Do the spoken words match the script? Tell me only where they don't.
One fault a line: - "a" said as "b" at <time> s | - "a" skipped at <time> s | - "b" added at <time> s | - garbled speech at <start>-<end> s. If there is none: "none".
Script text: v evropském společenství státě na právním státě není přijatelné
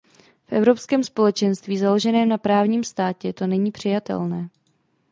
- "státě" said as "založeném" at 1.8 s
- "to" added at 3.3 s